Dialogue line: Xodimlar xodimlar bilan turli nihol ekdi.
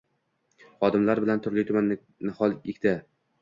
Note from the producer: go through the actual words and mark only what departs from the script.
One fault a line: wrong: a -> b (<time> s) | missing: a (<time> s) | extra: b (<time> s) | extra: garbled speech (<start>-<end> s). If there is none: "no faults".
missing: xodimlar (1.2 s)
extra: tuman (1.7 s)